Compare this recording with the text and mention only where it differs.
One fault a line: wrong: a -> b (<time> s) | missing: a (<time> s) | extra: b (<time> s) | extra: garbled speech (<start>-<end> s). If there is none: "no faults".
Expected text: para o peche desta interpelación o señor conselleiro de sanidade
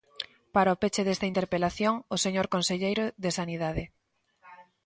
no faults